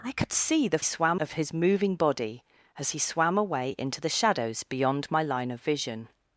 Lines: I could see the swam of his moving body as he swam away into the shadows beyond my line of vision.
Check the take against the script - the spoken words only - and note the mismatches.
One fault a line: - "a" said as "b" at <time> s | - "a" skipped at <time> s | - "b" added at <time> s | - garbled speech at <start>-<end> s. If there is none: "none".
none